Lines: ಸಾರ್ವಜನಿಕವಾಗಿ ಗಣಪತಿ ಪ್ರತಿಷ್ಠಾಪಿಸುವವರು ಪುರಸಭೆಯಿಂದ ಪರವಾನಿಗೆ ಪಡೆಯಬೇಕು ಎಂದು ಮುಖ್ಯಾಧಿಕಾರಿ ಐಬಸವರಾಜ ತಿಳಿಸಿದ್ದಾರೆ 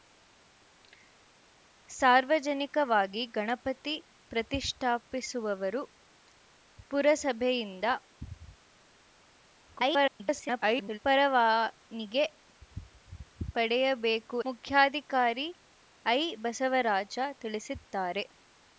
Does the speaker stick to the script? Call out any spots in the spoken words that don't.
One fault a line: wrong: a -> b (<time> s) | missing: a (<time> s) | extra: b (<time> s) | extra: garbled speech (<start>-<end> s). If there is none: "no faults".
extra: garbled speech (9.6-11.0 s)
missing: ಎಂದು (14.4 s)